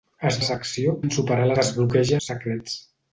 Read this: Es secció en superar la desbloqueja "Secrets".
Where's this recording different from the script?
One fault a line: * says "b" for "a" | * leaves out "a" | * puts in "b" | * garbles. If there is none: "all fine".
all fine